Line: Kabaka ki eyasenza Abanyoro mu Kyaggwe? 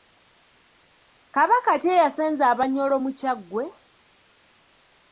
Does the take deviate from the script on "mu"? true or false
false